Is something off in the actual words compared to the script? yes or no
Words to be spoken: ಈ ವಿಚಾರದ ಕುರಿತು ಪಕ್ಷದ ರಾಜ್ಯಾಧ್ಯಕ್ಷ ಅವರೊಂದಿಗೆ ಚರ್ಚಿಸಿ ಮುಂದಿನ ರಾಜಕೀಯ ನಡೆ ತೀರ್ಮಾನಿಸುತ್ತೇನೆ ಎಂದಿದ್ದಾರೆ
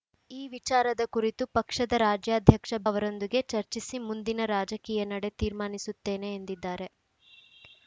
no